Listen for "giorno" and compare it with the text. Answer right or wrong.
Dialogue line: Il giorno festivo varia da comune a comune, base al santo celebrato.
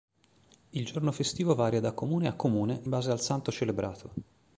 right